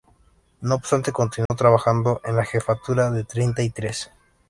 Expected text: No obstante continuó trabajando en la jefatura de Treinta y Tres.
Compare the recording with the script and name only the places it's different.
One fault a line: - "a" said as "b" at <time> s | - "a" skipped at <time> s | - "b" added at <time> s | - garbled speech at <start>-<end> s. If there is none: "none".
none